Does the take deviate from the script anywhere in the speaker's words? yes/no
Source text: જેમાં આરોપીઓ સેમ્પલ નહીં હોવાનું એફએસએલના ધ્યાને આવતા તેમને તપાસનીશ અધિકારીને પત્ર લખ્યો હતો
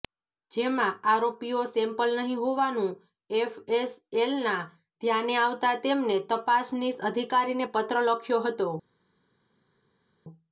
no